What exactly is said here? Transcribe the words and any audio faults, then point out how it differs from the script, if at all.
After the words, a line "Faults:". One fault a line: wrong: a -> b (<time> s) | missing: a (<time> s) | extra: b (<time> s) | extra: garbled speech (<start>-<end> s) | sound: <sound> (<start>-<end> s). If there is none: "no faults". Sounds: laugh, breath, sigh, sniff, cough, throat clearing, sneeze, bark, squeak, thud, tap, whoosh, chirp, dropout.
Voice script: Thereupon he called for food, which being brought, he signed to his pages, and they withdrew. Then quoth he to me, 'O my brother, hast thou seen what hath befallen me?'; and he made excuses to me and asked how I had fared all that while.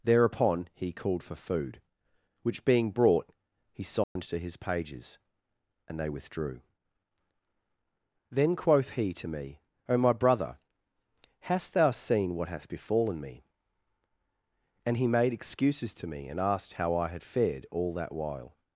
Thereupon he called for food, which being brought, he signed to his pages, and they withdrew. Then quoth he to me, 'O my brother, hast thou seen what hath befallen me?'; and he made excuses to me and asked how I had fared all that while.
Faults:
sound: dropout (4.0-4.2 s)